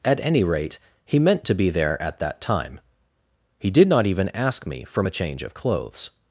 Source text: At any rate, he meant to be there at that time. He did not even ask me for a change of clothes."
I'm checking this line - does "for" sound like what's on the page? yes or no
no